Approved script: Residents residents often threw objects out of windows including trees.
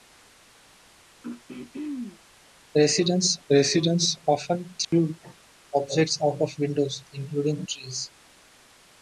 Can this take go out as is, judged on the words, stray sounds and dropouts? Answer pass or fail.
fail